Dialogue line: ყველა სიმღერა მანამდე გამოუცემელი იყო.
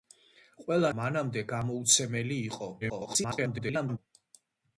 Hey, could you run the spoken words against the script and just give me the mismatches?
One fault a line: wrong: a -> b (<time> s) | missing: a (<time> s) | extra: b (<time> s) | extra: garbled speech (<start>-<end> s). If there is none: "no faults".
missing: სიმღერა (0.9 s)
extra: garbled speech (2.8-4.0 s)